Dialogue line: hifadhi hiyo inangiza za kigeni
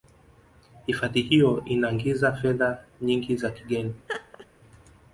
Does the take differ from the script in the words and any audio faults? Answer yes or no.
yes